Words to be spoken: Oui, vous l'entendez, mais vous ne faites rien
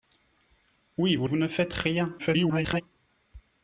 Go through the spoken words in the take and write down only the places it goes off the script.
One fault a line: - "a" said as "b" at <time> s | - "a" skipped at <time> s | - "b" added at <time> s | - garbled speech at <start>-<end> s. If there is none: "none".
- "l'entendez mais" skipped at 1.3 s
- garbled speech at 2.2-2.8 s